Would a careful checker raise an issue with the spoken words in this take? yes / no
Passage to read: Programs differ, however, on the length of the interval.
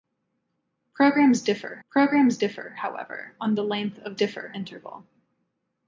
yes